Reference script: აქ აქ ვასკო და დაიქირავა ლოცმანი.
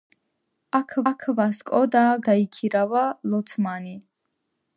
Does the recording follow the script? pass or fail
pass